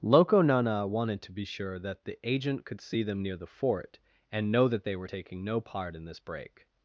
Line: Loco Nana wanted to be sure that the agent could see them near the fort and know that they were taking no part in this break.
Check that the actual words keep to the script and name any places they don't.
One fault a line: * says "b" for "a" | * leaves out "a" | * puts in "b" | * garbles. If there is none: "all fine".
all fine